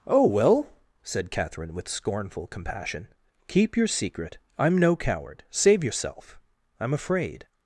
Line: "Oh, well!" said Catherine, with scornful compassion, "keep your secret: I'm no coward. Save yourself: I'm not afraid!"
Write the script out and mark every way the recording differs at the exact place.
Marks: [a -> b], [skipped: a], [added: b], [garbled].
"Oh, well!" said Catherine, with scornful compassion, "keep your secret: I'm no coward. Save yourself: I'm [skipped: not] afraid!"